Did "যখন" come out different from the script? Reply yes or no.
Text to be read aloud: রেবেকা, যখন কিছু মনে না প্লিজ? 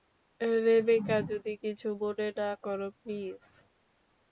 yes